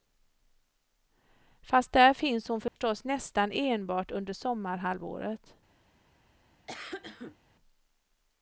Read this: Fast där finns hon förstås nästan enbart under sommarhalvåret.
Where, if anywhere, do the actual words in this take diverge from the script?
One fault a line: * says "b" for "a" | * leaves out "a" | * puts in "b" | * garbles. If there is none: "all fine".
all fine